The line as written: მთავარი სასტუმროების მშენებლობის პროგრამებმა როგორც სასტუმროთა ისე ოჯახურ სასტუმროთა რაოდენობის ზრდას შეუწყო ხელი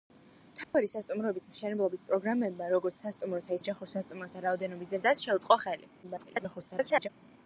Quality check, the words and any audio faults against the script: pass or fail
fail